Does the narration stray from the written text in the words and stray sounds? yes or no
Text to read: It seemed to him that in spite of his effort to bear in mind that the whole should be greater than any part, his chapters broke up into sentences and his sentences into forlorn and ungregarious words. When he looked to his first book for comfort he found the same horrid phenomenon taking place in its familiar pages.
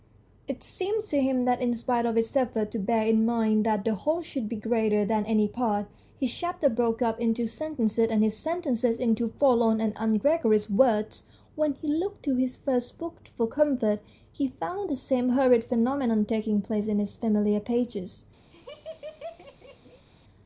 yes